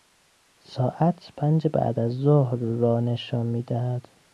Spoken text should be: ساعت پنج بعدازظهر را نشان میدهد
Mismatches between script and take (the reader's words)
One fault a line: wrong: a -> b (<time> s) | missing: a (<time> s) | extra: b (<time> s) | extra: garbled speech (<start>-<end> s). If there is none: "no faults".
no faults